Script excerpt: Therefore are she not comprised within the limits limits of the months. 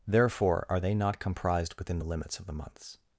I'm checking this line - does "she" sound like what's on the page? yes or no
no